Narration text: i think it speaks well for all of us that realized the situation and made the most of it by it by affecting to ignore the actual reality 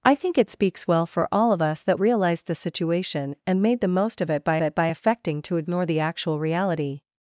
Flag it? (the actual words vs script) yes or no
no